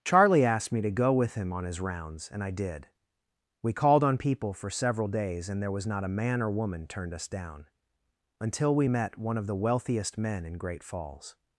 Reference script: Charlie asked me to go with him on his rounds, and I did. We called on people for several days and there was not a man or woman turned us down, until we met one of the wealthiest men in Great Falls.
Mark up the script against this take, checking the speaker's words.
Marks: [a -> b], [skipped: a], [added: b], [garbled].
Charlie asked me to go with him on his rounds, and I did. We called on people for several days and there was not a man or woman turned us down, until we met one of the wealthiest men in Great Falls.